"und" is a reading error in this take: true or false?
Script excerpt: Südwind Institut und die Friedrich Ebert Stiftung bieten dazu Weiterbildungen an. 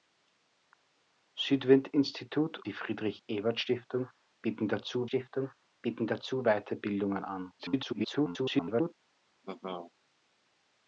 true